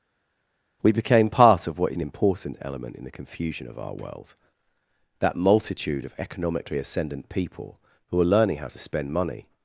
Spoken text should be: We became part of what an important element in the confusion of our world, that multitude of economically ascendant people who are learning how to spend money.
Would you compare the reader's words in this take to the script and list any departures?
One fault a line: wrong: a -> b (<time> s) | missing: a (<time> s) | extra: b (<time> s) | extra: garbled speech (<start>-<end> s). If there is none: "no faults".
no faults